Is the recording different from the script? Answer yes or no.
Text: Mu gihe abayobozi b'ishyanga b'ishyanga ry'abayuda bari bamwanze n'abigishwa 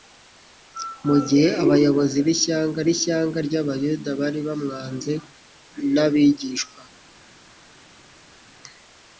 no